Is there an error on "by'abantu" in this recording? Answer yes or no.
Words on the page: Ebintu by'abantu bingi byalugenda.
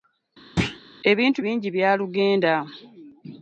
yes